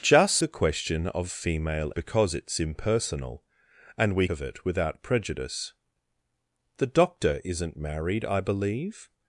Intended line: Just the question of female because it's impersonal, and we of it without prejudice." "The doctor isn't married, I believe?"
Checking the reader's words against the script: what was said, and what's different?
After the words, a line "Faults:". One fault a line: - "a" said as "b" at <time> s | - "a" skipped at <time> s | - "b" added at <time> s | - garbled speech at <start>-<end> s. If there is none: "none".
Just the question of female because it's impersonal, and we of it without prejudice." "The doctor isn't married, I believe?"
Faults:
none